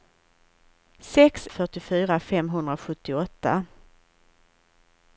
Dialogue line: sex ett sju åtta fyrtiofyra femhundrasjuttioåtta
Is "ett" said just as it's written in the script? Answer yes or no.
no